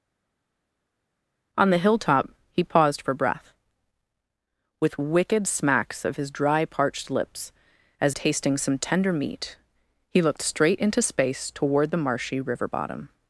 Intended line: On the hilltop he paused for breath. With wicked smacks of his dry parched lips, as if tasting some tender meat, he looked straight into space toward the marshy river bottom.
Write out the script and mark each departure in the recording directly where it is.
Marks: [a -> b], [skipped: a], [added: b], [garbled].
On the hilltop he paused for breath. With wicked smacks of his dry parched lips, as [skipped: if] tasting some tender meat, he looked straight into space toward the marshy river bottom.